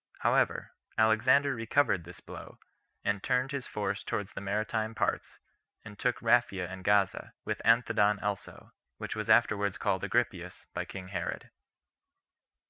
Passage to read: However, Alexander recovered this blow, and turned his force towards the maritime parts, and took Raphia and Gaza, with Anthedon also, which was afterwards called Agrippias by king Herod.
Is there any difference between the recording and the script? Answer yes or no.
no